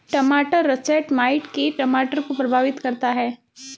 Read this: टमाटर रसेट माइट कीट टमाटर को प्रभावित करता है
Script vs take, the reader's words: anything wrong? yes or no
no